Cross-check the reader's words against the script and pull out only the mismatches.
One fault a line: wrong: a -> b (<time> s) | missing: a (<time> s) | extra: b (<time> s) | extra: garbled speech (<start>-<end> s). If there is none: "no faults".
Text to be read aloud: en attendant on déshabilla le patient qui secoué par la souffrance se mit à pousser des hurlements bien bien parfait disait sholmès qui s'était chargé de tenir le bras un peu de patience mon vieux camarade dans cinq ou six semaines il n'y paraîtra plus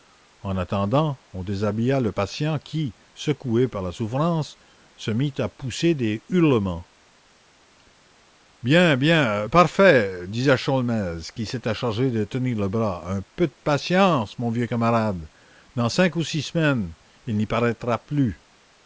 no faults